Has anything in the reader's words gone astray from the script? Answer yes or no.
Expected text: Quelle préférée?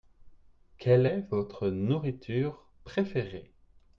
yes